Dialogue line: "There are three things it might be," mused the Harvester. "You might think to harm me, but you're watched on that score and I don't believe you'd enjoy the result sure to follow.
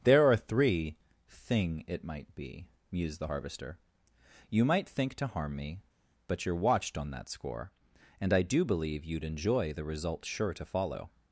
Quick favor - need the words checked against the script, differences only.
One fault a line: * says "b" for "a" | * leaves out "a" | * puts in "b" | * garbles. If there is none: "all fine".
* says "thing" for "things"
* says "do" for "don't"